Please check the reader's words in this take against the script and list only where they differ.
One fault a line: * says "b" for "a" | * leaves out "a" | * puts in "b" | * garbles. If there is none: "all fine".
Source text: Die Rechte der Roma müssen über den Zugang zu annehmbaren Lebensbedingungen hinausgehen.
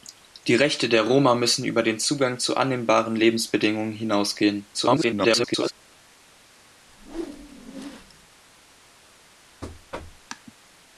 * garbles